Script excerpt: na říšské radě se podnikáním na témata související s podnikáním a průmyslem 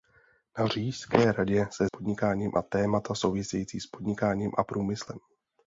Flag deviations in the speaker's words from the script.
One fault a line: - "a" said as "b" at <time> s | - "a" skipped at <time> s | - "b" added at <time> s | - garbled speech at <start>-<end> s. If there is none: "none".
none